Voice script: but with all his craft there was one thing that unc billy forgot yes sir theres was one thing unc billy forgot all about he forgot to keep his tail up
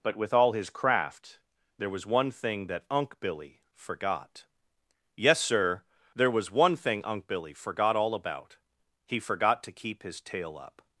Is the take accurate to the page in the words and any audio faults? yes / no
no